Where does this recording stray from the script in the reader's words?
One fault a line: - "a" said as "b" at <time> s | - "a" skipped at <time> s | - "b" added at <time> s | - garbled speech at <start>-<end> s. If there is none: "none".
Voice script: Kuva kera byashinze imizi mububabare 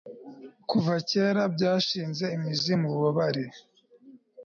none